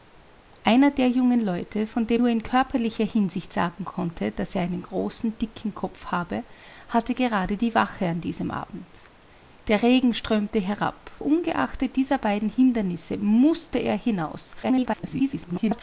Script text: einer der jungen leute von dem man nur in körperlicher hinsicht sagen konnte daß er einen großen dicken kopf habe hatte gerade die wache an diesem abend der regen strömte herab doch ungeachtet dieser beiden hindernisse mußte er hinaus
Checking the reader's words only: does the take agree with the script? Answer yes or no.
no